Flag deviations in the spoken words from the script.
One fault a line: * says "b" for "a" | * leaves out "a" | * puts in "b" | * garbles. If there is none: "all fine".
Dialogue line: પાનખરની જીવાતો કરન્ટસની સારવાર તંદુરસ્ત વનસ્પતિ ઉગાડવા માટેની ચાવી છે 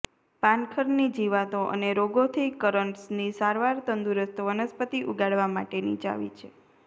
* puts in "અને રોગોથી"